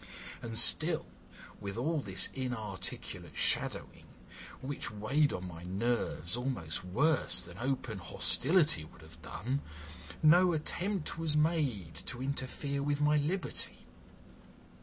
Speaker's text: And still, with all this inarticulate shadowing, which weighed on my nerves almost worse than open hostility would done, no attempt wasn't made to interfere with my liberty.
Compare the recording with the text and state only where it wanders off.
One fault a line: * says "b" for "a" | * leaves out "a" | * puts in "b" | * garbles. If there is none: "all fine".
* puts in "have"
* says "was" for "wasn't"